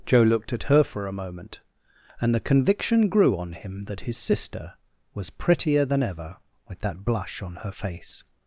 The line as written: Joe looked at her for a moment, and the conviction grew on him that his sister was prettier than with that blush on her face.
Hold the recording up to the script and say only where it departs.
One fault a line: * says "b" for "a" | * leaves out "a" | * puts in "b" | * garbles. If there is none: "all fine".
* puts in "ever"